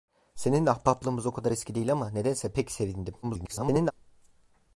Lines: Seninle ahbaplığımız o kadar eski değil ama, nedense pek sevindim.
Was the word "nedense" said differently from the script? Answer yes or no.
no